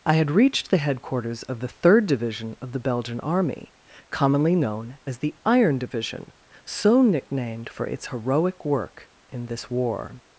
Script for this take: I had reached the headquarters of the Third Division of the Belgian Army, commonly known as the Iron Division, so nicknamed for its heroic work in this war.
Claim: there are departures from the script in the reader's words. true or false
false